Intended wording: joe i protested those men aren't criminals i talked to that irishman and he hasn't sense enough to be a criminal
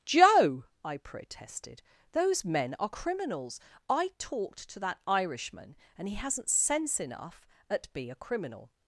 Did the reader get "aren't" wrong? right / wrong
wrong